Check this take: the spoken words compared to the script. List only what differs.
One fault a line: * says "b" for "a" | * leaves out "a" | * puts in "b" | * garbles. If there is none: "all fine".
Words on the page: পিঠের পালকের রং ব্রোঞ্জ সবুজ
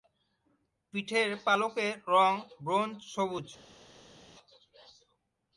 all fine